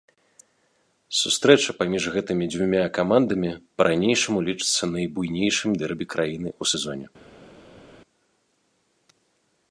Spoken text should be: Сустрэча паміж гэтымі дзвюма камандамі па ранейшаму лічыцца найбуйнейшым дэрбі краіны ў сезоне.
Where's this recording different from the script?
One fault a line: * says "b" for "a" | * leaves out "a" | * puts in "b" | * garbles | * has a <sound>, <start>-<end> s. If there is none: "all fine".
all fine